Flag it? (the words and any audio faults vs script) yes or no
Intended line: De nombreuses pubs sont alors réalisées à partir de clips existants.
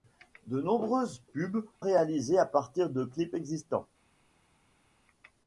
yes